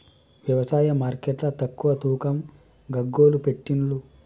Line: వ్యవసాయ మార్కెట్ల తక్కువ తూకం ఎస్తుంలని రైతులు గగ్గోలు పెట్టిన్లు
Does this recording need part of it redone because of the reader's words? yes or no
yes